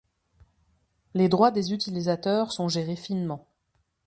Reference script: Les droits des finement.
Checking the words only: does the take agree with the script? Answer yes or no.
no